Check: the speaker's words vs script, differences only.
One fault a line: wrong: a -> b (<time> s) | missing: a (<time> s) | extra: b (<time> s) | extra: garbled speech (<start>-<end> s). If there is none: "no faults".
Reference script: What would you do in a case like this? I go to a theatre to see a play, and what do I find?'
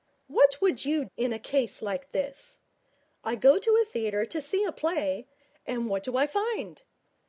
missing: do (1.1 s)